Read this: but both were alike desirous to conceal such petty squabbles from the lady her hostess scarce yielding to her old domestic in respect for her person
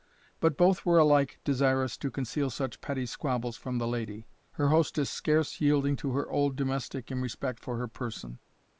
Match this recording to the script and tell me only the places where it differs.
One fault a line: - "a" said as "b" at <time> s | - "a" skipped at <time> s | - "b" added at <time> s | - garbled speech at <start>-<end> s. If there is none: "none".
none